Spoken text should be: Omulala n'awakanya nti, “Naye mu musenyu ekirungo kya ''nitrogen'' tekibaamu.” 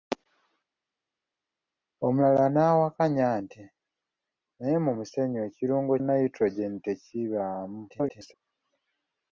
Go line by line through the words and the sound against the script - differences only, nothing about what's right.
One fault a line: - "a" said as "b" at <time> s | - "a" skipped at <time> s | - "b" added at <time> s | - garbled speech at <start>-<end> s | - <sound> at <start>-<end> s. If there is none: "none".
- "kya" skipped at 5.9 s
- garbled speech at 7.9-8.3 s